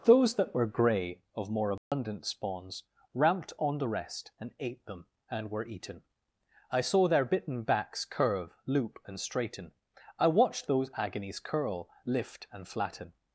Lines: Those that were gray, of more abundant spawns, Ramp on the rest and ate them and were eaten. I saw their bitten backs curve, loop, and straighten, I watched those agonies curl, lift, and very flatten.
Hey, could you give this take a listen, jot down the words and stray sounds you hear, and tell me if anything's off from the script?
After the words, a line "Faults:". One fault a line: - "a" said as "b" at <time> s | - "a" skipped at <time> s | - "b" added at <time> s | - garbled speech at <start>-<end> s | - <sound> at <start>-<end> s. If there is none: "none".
Those that were gray, of more abundant spawns, Ramped on the rest and ate them and were eaten. I saw their bitten backs curve, loop, and straighten, I watched those agonies curl, lift, and flatten.
Faults:
- dropout at 1.8-1.9 s
- "Ramp" said as "Ramped" at 3.1 s
- "very" skipped at 12.7 s